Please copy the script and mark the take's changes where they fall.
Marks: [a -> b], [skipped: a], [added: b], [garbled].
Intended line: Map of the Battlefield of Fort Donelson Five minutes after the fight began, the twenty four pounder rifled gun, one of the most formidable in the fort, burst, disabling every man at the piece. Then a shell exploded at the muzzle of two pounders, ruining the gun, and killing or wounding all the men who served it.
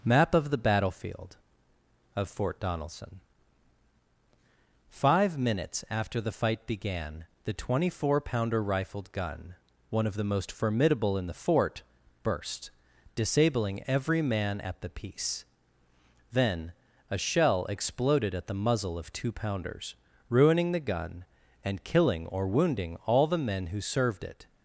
Map of the Battlefield of Fort Donelson Five minutes after the fight began, the twenty four pounder rifled gun, one of the most formidable in the fort, burst, disabling every man at the piece. Then a shell exploded at the muzzle of two pounders, ruining the gun, and killing or wounding all the men who served it.